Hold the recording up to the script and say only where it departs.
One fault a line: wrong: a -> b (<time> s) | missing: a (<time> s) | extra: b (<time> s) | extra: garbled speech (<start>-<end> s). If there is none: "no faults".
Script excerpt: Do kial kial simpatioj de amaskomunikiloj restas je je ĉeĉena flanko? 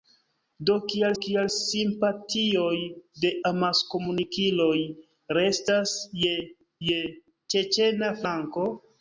no faults